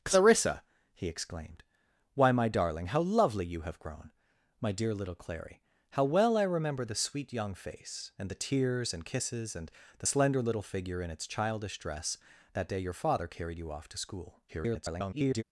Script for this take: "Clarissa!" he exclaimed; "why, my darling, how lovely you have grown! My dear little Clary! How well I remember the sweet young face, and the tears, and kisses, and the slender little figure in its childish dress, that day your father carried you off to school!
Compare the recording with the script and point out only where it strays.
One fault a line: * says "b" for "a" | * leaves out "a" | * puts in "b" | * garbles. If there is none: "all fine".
* garbles